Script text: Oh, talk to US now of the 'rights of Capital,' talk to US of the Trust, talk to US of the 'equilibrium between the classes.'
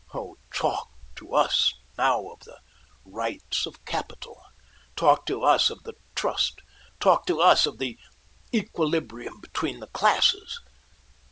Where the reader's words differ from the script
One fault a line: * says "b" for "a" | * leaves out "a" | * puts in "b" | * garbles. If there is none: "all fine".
all fine